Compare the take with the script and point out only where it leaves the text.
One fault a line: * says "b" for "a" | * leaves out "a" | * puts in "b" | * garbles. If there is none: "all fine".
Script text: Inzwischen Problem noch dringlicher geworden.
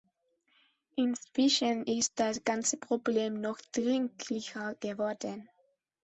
* puts in "ist das ganze"